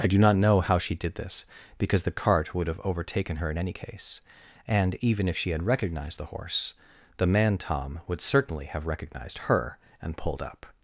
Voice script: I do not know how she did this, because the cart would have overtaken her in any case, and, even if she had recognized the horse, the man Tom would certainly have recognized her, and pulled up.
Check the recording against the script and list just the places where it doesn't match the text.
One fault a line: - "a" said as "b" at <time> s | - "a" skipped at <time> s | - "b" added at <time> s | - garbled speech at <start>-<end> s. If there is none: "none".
none